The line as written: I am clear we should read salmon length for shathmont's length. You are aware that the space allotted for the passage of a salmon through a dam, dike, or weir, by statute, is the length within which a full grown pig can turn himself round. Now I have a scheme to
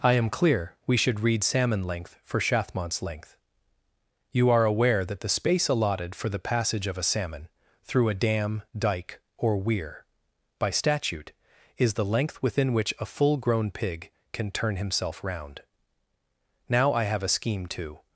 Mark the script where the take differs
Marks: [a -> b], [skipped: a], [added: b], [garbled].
I am clear we should read salmon length for shathmont's length. You are aware that the space allotted for the passage of a salmon through a dam, dike, or weir, by statute, is the length within which a full grown pig can turn himself round. Now I have a scheme to